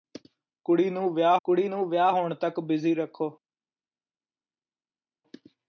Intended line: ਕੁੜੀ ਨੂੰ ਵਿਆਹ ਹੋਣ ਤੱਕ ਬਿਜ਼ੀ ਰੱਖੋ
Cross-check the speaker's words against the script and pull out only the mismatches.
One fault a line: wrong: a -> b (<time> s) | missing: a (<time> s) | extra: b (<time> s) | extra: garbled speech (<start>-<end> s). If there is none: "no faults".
extra: ਕੁੜੀ ਨੂੰ ਵਿਆਹ (1.4 s)